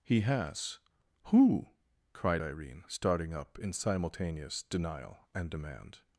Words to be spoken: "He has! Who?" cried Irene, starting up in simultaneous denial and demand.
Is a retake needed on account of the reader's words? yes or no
no